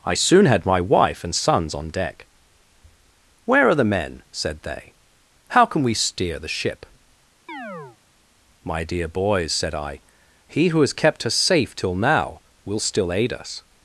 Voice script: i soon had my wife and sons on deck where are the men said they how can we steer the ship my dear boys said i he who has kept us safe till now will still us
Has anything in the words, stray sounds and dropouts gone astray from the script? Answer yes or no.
yes